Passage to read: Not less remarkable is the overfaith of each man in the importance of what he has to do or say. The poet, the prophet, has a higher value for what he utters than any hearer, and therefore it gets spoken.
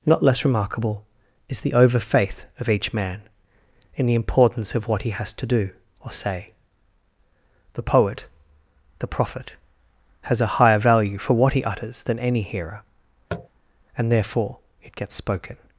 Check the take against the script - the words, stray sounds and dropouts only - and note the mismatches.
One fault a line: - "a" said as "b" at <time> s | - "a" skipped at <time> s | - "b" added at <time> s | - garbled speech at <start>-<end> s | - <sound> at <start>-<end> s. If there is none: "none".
- tap at 13.3-13.5 s